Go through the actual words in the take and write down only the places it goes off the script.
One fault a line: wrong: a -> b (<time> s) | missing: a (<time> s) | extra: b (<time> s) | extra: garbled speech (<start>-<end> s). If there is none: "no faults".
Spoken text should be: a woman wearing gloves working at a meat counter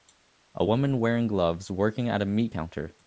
no faults